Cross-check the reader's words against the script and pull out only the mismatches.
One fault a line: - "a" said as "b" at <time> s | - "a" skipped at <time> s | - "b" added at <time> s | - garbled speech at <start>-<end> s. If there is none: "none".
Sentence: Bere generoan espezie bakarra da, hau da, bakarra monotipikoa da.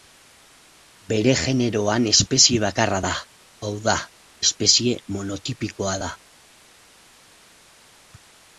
- "bakarra" said as "espezie" at 4.5 s